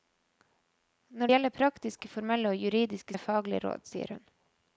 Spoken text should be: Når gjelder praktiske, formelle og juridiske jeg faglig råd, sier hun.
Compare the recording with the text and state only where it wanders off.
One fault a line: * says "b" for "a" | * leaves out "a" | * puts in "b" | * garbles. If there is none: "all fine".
all fine